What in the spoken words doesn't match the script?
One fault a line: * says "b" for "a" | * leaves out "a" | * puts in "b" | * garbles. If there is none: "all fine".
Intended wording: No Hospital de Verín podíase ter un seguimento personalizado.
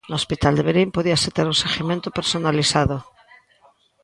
all fine